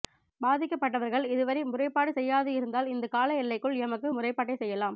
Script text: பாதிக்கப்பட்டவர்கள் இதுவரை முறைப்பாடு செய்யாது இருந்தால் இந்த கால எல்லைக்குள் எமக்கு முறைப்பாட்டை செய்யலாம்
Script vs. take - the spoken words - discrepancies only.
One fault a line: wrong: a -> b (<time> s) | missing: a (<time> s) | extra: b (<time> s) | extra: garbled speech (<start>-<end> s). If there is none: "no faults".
no faults